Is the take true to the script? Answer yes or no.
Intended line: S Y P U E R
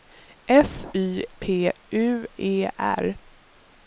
yes